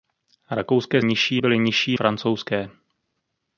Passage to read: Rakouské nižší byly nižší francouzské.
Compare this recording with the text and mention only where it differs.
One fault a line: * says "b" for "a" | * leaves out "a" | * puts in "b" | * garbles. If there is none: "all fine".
all fine